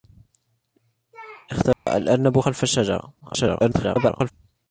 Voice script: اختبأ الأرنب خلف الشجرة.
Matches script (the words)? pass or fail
fail